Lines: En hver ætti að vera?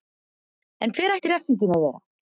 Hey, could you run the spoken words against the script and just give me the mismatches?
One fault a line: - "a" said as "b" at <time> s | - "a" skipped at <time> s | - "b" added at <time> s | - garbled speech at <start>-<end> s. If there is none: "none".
- "refsingin" added at 1.3 s